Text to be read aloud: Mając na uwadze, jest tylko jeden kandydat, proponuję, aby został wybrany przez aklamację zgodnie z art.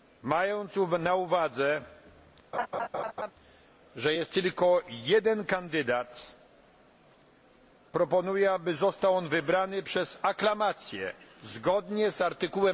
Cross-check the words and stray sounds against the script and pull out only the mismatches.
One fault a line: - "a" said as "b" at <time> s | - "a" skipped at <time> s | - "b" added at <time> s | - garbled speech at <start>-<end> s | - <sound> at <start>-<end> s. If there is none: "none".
- laugh at 2.5-3.3 s
- "że" added at 4.0 s
- "on" added at 9.2 s